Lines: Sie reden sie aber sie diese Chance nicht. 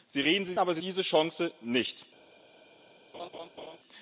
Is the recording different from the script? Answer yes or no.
no